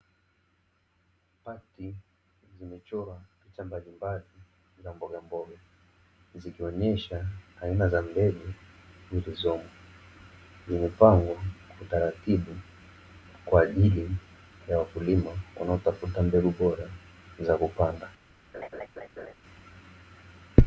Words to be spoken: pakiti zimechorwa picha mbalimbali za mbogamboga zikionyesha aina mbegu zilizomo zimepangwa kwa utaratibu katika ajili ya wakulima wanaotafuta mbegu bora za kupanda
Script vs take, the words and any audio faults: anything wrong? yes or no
yes